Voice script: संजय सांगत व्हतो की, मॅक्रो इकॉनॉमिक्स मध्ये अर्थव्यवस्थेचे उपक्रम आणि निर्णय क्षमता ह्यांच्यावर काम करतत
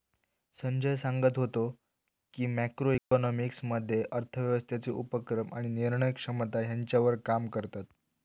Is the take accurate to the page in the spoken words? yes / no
yes